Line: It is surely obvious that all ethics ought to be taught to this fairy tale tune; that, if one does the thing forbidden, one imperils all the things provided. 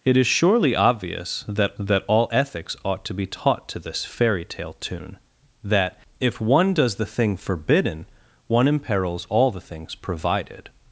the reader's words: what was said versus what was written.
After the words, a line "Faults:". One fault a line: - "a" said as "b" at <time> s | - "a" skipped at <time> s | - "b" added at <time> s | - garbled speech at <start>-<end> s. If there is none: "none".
It is surely obvious that that all ethics ought to be taught to this fairy tale tune; that, if one does the thing forbidden, one imperils all the things provided.
Faults:
- "that" added at 1.8 s